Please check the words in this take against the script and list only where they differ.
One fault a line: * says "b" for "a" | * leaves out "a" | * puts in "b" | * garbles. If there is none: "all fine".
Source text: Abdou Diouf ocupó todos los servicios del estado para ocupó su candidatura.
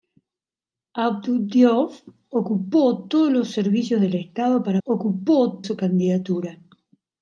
all fine